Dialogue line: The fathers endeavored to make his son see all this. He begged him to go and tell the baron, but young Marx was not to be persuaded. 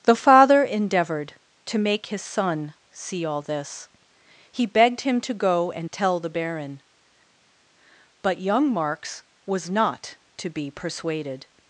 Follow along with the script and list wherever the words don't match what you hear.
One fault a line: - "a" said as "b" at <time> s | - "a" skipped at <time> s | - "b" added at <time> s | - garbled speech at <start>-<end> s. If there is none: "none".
- "fathers" said as "father" at 0.1 s